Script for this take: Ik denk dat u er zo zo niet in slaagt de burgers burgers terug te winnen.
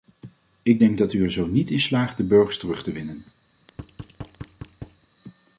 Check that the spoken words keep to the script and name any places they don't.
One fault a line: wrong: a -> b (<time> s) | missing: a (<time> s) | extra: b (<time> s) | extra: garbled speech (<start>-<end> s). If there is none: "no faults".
missing: zo (1.5 s)
missing: burgers (2.6 s)